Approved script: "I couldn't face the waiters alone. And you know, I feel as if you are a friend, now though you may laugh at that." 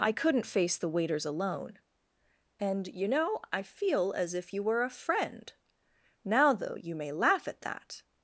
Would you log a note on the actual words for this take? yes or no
yes